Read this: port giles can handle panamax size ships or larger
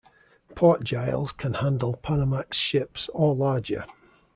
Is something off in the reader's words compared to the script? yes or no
yes